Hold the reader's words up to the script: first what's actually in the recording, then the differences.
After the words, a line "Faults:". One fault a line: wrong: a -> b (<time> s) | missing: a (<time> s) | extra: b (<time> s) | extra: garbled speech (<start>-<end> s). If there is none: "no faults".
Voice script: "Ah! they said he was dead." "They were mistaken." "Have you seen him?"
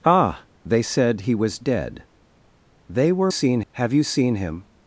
"Ah! they said he was dead." "They were seen." "Have you seen him?"
Faults:
wrong: mistaken -> seen (3.3 s)